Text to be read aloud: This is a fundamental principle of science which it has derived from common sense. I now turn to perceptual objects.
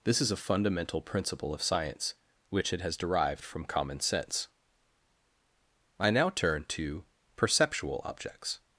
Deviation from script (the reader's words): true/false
false